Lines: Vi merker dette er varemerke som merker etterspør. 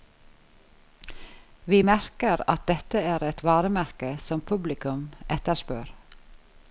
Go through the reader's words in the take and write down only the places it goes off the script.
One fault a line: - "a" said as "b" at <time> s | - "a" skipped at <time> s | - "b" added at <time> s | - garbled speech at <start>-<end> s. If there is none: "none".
- "at" added at 2.5 s
- "et" added at 3.3 s
- "merker" said as "publikum" at 4.5 s